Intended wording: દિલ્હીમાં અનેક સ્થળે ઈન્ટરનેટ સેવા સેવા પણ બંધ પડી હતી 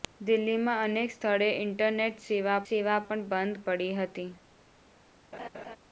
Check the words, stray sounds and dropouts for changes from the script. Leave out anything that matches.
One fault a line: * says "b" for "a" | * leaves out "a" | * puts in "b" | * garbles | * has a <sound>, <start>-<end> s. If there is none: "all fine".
* has a laugh, 5.3-5.8 s